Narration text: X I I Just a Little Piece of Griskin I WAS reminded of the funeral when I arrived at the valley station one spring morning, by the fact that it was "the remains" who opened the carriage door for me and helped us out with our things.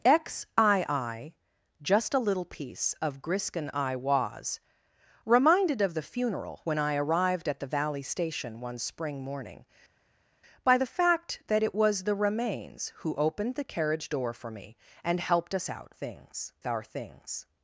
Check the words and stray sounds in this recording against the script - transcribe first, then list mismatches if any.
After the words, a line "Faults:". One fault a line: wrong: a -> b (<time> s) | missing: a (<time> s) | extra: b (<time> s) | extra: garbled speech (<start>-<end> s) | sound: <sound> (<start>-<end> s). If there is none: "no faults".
X I I Just a Little Piece of Griskin I WAS reminded of the funeral when I arrived at the valley station one spring morning, by the fact that it was "the remains" who opened the carriage door for me and helped us out things our things.
Faults:
wrong: with -> things (15.9 s)